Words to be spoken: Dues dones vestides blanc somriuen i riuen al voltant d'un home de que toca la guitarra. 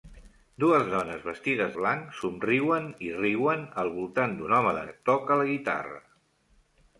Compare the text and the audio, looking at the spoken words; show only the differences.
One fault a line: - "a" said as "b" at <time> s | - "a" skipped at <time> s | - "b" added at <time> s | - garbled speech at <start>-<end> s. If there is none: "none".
none